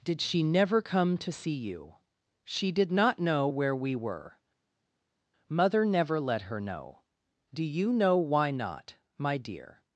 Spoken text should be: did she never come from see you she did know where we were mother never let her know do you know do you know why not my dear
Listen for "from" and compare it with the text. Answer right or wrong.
wrong